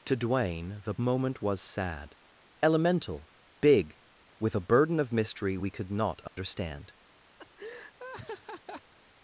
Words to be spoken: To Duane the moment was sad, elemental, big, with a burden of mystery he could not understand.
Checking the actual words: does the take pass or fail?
fail